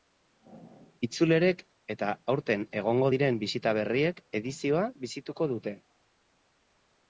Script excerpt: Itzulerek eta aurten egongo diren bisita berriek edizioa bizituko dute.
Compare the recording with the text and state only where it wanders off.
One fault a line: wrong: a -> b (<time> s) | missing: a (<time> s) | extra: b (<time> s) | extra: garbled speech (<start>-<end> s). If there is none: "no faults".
no faults